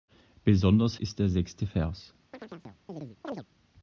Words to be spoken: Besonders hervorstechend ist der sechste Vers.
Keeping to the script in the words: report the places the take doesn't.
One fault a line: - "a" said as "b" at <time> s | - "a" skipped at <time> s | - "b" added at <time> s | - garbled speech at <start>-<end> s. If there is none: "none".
- "hervorstechend" skipped at 1.0 s